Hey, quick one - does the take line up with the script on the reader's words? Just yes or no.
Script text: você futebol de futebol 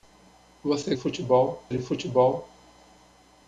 yes